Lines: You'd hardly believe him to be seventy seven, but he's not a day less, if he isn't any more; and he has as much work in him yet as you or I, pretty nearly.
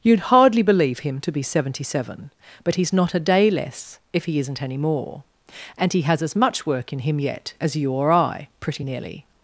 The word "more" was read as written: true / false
true